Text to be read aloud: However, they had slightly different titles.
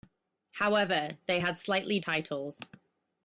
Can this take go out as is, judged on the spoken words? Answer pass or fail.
fail